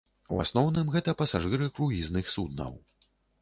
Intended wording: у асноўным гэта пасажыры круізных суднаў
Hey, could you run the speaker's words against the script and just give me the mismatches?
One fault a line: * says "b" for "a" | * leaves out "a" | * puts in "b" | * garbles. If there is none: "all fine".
all fine